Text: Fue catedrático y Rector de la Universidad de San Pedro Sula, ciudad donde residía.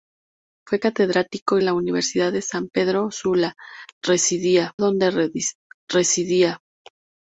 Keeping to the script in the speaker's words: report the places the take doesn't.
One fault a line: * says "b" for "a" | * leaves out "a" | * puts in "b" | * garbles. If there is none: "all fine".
* leaves out "Rector de"
* says "residía" for "ciudad"